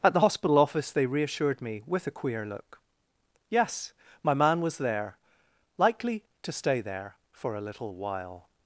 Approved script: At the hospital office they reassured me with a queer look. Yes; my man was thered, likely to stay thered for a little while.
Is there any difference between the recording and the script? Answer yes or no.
yes